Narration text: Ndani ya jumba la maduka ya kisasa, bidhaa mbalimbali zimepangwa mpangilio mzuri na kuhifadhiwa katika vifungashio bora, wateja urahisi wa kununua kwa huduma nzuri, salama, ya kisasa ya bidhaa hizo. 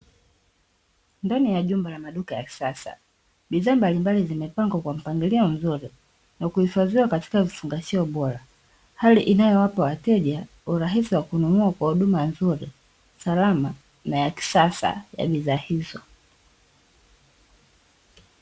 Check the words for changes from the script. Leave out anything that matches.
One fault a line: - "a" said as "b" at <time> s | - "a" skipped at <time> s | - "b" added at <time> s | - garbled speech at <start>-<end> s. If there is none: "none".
- "kwa" added at 4.8 s
- "hali inayowapa" added at 9.0 s
- "na" added at 14.1 s